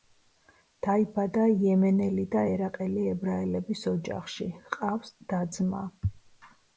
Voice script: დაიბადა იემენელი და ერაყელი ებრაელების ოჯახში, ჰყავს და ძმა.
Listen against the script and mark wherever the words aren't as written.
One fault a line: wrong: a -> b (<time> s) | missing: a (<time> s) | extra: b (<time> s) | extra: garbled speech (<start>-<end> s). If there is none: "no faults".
no faults